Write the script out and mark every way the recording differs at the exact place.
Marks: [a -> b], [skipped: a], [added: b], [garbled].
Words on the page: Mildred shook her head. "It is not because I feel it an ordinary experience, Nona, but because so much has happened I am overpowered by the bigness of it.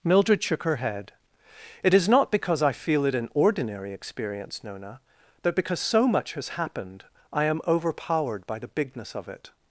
Mildred shook her head. "It is not because I feel it an ordinary experience, Nona, but because so much has happened I am overpowered by the bigness of it.